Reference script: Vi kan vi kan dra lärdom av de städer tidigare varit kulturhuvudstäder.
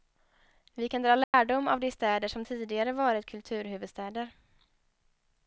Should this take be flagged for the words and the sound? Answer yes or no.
yes